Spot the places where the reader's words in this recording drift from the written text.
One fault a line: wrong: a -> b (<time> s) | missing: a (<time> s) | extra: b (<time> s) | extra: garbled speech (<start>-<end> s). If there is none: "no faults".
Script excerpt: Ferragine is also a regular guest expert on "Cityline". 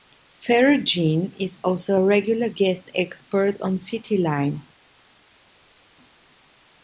no faults